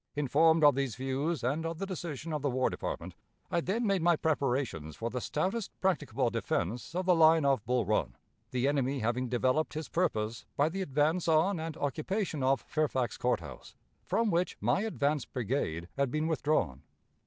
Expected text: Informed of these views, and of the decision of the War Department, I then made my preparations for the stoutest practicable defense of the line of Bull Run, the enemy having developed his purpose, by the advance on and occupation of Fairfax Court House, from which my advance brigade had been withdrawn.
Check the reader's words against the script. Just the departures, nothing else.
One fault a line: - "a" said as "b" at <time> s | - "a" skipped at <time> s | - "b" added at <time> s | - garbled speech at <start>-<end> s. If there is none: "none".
none